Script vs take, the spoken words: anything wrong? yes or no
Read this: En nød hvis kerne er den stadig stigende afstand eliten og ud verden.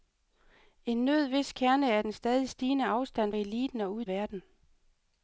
no